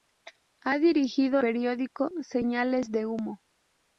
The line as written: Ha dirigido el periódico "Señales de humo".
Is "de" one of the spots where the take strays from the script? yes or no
no